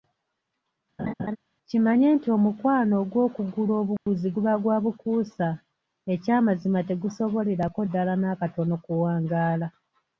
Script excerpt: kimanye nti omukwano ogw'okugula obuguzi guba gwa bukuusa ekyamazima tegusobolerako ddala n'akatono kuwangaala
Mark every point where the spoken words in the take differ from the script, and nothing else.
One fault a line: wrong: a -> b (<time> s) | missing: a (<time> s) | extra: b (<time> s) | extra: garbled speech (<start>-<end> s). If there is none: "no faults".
no faults